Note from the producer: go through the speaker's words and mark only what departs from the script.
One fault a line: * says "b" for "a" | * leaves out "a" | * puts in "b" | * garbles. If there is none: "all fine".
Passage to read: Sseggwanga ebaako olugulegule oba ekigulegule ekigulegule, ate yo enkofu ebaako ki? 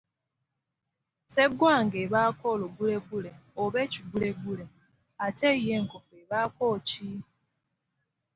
* leaves out "ekigulegule"